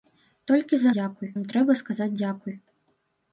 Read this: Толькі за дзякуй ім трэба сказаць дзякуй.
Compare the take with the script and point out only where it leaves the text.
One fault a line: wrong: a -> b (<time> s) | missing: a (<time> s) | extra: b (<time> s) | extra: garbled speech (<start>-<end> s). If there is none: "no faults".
no faults